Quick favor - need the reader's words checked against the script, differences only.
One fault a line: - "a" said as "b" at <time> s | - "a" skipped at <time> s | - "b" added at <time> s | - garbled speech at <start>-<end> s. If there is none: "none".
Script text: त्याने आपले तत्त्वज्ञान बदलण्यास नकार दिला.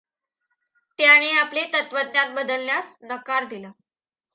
none